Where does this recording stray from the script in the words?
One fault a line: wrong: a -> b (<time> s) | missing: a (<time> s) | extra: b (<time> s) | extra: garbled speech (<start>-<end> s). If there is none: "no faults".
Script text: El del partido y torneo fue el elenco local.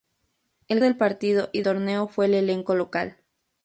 no faults